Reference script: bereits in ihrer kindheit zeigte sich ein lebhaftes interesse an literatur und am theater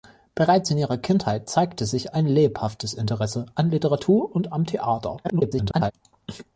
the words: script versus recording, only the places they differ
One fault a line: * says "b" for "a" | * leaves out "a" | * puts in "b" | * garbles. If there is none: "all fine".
* garbles